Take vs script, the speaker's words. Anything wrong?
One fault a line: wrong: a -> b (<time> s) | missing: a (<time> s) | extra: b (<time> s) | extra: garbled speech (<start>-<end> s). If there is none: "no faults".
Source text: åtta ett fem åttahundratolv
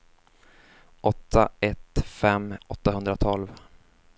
no faults